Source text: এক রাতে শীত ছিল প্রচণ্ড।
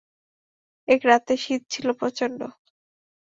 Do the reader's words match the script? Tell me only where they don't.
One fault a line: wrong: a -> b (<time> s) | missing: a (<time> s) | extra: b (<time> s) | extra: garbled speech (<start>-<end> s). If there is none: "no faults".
no faults